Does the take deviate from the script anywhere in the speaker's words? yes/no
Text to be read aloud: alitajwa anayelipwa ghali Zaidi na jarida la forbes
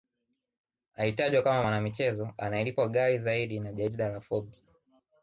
yes